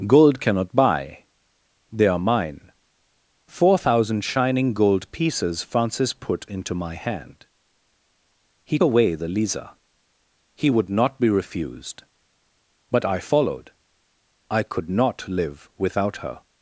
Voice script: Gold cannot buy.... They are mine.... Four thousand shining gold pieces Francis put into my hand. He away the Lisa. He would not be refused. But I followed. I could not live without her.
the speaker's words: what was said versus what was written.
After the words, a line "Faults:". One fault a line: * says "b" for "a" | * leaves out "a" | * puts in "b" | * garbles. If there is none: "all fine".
Gold cannot buy.... They are mine.... Four thousand shining gold pieces Francis put into my hand. He away the Lisa. He would not be refused. But I followed. I could not live without her.
Faults:
all fine